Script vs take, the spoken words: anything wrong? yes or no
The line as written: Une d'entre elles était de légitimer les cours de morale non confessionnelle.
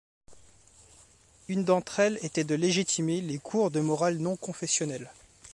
no